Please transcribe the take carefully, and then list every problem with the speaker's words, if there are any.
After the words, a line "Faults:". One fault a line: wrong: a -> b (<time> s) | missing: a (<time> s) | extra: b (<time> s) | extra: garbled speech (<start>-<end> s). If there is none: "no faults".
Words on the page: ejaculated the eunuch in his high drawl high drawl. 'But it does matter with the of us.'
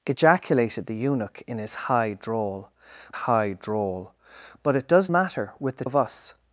ejaculated the eunuch in his high drawl high drawl. 'But it does matter with the of us.'
Faults:
no faults